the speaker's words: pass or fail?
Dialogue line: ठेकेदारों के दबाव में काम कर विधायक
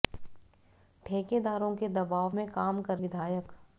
pass